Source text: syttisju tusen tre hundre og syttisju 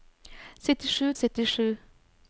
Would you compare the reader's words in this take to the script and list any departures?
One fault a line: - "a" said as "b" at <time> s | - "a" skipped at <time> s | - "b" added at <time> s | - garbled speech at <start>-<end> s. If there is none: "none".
- "tusen tre hundre" skipped at 1.1 s